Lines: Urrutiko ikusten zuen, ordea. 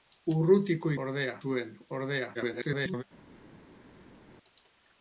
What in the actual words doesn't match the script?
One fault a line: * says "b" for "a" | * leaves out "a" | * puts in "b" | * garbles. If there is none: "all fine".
* says "ordea" for "ikusten"
* garbles